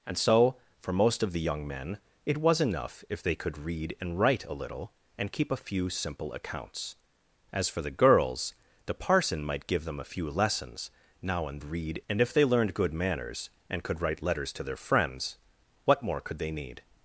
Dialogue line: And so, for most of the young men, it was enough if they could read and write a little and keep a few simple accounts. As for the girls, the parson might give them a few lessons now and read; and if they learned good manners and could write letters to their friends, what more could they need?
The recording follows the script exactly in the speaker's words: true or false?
true